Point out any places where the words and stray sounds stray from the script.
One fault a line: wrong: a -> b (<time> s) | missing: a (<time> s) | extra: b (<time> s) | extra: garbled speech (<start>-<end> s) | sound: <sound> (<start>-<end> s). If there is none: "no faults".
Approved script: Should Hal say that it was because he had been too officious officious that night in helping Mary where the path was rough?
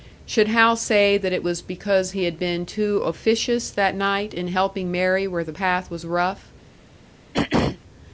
missing: officious (3.7 s)
sound: throat clearing (7.3-7.8 s)